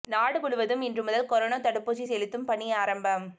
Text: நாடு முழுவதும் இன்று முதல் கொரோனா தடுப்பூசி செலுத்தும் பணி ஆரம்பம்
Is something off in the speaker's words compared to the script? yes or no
no